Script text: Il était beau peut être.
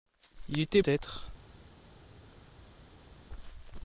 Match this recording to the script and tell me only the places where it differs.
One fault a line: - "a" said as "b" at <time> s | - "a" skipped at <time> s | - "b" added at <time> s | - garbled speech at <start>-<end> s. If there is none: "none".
- "beau peut" skipped at 0.8 s